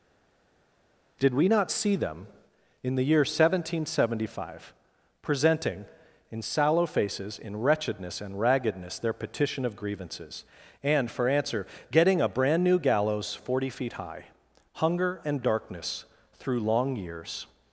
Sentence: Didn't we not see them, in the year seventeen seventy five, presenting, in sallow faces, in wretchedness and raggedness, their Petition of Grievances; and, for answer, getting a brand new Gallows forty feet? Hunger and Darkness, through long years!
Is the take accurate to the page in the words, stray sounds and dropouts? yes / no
no